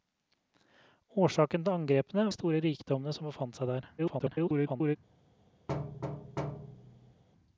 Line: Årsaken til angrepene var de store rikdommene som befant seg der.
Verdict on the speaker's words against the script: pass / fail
fail